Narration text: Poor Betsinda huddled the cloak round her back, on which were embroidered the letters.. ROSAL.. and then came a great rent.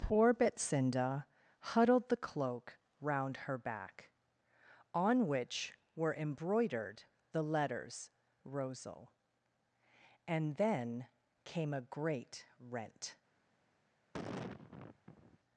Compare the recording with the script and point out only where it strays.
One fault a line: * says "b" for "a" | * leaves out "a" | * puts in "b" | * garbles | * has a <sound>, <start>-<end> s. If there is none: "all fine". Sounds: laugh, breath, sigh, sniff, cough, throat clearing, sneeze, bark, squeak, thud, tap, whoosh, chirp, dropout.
* has a sigh, 14.1-15.4 s